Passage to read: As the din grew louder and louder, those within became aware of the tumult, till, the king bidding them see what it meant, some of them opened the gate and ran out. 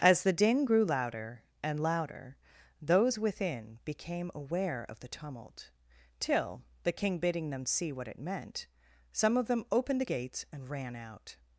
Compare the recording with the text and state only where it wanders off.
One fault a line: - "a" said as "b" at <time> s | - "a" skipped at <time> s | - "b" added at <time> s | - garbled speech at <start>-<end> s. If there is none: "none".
- "gate" said as "gates" at 10.0 s